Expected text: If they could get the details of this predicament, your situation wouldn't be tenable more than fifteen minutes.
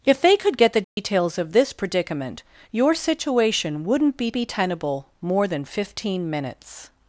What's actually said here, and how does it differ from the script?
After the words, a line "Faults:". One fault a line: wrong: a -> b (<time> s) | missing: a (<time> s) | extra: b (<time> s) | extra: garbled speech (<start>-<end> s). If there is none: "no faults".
If they could get the details of this predicament, your situation wouldn't be be tenable more than fifteen minutes.
Faults:
extra: be (4.3 s)